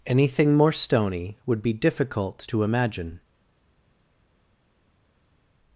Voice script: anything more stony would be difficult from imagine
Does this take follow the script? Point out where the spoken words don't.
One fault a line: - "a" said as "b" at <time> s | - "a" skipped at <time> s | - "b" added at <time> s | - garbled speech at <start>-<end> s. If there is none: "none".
- "from" said as "to" at 2.5 s